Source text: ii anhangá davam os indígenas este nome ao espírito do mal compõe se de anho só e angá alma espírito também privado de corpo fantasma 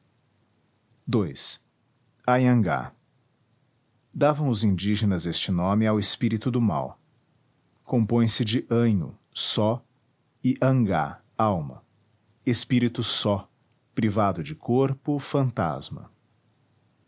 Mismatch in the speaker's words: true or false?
true